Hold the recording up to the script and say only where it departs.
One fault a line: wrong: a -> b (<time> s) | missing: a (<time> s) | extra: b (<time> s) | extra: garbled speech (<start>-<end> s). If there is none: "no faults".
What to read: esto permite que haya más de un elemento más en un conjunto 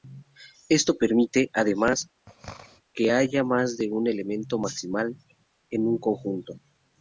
extra: además (1.5 s)
wrong: más -> maximal (4.6 s)